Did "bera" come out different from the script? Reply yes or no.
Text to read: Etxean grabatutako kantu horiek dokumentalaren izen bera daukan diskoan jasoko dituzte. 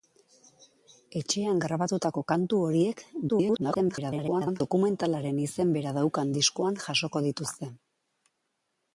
no